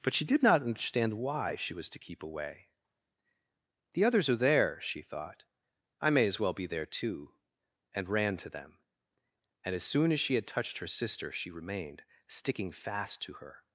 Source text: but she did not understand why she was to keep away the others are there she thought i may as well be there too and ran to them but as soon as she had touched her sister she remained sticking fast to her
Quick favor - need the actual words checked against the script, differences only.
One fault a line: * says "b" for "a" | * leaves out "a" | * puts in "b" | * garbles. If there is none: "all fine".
* says "and" for "but"